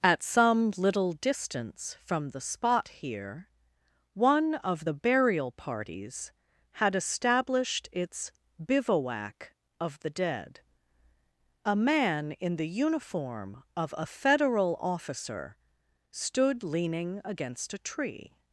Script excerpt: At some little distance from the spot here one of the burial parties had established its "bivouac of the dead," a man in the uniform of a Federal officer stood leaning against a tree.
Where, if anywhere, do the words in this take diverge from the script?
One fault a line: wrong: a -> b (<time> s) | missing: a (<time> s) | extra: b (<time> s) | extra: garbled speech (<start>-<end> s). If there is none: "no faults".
no faults